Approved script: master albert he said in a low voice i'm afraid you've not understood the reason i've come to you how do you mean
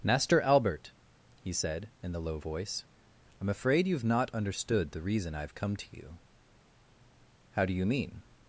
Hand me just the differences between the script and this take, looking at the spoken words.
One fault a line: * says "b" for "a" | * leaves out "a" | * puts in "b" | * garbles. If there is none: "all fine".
* says "the" for "a"